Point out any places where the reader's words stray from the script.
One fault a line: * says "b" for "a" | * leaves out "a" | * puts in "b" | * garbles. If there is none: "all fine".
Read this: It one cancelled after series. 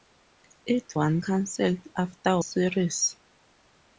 all fine